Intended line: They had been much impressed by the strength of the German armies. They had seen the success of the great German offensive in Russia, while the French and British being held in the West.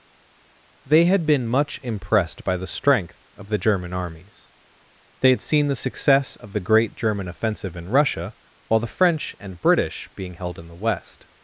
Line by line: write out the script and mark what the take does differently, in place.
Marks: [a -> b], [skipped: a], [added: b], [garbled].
They had been much impressed by the strength of the German armies. They had seen the success of the great German offensive in Russia, while the French and British being held in the West.